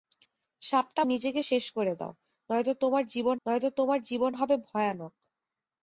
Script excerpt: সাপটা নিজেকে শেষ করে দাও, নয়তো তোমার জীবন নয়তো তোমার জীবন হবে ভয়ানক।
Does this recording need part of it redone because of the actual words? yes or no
no